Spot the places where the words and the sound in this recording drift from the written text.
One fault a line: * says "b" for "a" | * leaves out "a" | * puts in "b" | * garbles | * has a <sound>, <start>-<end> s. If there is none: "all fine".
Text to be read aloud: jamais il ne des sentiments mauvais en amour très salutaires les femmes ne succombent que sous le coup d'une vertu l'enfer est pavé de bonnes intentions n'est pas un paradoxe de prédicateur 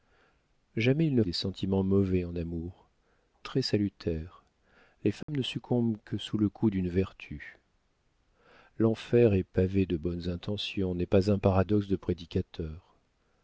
* has a dropout, 5.2-5.3 s